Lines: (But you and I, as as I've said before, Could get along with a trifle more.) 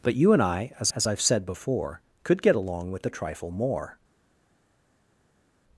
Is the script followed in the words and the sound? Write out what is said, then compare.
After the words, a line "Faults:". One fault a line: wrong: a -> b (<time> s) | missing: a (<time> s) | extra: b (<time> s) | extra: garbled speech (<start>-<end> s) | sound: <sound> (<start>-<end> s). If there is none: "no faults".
(But you and I, as as I've said before, Could get along with a trifle more.)
Faults:
no faults